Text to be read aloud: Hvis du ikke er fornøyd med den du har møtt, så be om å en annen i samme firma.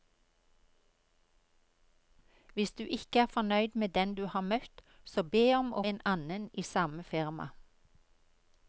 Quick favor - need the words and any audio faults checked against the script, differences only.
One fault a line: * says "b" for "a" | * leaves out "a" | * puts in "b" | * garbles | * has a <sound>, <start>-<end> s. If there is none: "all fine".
all fine